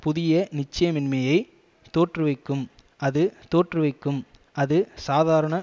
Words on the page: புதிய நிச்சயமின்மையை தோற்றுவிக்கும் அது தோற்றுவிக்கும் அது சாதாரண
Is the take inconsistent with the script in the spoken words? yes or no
no